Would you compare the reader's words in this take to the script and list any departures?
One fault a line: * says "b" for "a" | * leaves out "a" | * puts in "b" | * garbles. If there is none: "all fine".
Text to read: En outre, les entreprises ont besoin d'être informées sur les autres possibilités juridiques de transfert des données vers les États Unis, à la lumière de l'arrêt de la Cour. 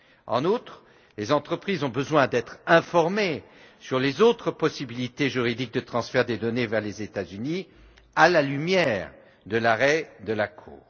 all fine